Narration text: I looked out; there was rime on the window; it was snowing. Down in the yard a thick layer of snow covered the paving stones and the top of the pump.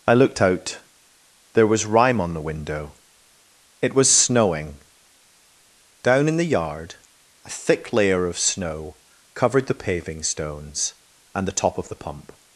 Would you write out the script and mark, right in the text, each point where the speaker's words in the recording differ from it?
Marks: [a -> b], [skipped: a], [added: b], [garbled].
I looked out; there was rime on the window; it was snowing. Down in the yard a thick layer of snow covered the paving stones and the top of the pump.